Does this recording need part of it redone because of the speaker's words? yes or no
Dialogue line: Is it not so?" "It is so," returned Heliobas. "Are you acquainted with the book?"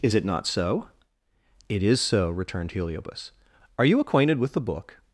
no